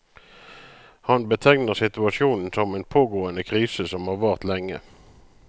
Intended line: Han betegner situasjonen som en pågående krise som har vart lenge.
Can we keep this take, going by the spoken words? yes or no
yes